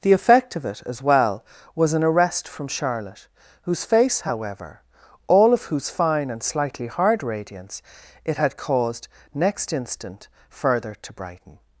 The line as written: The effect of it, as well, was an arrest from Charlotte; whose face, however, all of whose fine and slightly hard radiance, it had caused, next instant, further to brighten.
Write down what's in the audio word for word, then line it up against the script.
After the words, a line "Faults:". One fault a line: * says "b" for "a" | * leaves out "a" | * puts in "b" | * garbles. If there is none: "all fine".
The effect of it, as well, was an arrest from Charlotte; whose face, however, all of whose fine and slightly hard radiance, it had caused, next instant, further to brighten.
Faults:
all fine